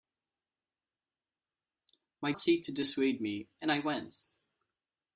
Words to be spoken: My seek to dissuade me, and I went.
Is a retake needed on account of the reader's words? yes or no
no